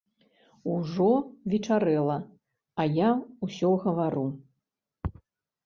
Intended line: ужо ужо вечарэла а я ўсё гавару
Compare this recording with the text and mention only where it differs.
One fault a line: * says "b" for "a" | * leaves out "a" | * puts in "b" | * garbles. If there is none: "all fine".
* leaves out "ужо"